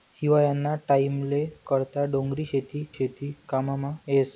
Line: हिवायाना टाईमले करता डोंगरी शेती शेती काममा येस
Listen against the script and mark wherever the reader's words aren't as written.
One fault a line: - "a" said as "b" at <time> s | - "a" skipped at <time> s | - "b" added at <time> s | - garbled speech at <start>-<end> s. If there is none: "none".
none